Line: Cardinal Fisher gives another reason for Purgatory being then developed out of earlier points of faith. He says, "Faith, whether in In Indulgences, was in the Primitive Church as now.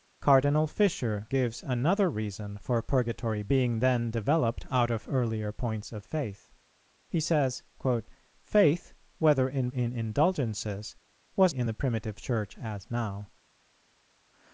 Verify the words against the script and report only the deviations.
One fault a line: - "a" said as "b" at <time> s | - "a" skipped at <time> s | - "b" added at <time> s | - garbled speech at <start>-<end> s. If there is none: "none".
none